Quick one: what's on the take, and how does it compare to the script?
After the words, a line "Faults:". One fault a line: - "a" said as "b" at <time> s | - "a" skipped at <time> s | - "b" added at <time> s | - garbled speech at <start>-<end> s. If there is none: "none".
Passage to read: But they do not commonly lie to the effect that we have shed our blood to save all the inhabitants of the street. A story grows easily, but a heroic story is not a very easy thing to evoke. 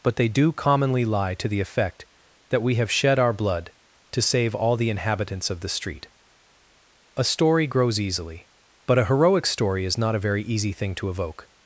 But they do commonly lie to the effect that we have shed our blood to save all the inhabitants of the street. A story grows easily, but a heroic story is not a very easy thing to evoke.
Faults:
- "not" skipped at 0.5 s